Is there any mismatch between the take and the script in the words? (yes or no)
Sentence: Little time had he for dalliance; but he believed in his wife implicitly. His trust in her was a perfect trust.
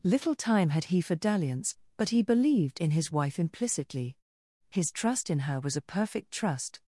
no